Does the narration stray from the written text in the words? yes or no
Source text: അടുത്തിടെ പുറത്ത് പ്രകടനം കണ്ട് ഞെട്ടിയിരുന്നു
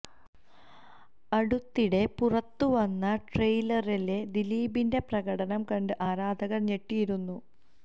yes